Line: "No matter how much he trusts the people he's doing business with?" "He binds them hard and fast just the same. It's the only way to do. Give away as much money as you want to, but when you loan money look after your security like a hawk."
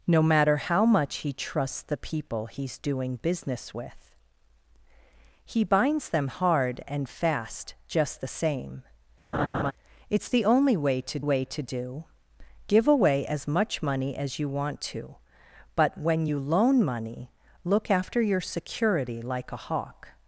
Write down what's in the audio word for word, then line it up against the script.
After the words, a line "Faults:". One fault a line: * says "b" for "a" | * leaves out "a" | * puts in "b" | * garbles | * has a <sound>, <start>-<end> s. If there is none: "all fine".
"No matter how much he trusts the people he's doing business with?" "He binds them hard and fast just the same. It's the only way to way to do. Give away as much money as you want to, but when you loan money look after your security like a hawk."
Faults:
* has a laugh, 9.3-9.7 s
* puts in "way to"